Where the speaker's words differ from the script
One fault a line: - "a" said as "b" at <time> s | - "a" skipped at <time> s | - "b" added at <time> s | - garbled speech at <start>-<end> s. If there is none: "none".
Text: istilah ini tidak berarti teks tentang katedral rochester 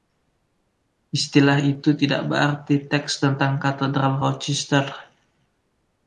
- "ini" said as "itu" at 1.6 s